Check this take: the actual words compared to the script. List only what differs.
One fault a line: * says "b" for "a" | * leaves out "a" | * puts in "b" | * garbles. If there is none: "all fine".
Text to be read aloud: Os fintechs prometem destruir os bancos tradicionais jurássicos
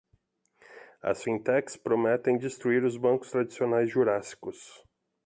* says "As" for "Os"